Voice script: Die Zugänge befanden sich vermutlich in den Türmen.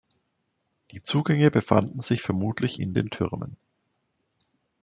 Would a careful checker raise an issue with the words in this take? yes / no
no